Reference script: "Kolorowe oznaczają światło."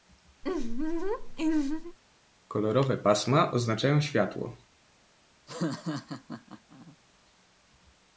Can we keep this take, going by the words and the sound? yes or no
no